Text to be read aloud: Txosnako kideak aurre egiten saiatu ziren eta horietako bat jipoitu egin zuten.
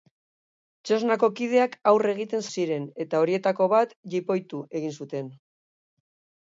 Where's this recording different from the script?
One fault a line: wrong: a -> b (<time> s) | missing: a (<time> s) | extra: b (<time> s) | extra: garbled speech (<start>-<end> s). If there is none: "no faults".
missing: saiatu (2.5 s)